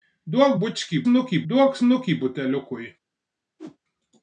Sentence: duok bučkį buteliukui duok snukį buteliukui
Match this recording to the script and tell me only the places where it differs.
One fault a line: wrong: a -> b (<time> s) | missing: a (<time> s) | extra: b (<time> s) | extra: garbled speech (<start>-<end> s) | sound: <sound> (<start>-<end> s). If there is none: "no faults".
wrong: buteliukui -> snukį (1.1 s)
sound: whoosh (3.6-3.8 s)